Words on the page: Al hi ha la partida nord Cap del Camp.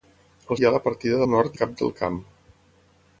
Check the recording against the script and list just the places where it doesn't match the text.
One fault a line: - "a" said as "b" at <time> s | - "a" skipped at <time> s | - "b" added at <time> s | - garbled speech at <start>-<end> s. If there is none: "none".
none